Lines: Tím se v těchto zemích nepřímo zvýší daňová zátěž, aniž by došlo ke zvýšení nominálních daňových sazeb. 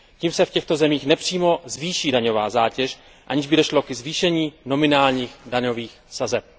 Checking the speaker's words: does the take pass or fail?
pass